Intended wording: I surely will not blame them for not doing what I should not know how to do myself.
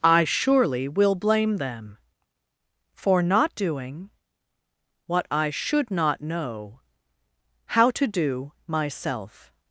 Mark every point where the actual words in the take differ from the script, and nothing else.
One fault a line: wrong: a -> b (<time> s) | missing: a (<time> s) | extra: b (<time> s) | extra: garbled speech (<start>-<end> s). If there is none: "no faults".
missing: not (1.1 s)